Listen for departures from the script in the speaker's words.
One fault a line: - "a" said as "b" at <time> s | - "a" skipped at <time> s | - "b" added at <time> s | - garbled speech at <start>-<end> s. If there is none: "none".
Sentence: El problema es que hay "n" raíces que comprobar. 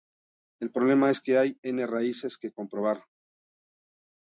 none